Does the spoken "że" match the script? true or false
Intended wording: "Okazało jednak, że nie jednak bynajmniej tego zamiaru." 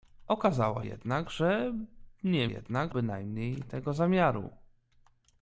true